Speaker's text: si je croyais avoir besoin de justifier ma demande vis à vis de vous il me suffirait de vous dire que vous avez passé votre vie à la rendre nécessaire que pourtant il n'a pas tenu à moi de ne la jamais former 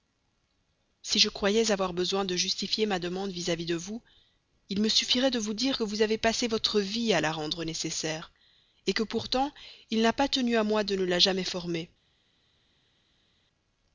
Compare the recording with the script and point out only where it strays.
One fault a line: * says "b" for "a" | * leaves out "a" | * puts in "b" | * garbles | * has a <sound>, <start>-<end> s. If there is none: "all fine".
all fine